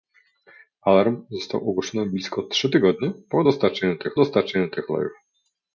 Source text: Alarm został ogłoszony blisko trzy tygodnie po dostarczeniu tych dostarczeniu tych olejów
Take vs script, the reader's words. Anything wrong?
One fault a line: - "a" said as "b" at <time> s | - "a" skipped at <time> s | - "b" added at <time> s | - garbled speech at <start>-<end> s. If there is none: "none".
none